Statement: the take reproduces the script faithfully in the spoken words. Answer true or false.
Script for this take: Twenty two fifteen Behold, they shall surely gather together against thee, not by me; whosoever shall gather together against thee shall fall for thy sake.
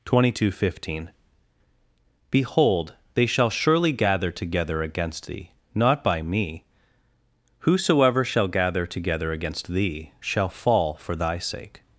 true